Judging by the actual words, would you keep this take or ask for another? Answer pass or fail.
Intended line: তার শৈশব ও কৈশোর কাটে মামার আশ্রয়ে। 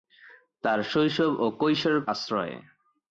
fail